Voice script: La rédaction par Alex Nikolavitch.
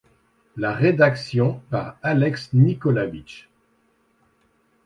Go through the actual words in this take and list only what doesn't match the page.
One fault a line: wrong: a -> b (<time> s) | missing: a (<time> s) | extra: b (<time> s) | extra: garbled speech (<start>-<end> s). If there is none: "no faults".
no faults